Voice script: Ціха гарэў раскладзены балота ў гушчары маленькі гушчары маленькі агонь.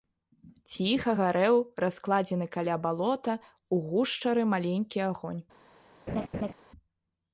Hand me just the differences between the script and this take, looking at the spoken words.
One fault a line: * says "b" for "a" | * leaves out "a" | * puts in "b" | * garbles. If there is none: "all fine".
* puts in "каля"
* leaves out "гушчары маленькі"